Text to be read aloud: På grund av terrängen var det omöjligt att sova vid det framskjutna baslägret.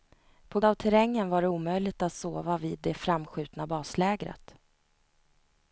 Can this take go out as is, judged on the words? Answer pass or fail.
fail